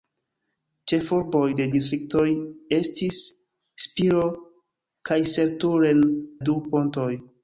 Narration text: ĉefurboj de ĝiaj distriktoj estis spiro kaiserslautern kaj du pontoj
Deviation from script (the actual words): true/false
true